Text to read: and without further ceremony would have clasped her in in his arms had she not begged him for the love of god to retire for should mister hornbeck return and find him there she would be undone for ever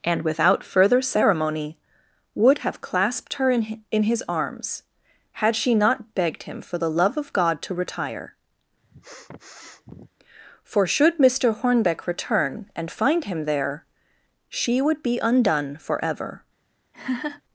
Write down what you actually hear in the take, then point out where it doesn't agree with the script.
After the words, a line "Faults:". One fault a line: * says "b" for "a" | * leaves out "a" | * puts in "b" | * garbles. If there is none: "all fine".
and without further ceremony would have clasped her in in his arms had she not begged him for the love of god to retire for should mister hornbeck return and find him there she would be undone for ever
Faults:
all fine